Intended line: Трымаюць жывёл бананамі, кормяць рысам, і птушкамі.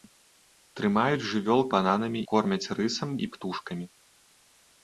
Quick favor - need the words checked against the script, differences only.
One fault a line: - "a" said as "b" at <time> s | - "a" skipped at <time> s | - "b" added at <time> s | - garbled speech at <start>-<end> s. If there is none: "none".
none